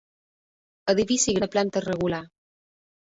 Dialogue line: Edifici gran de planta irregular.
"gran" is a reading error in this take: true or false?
true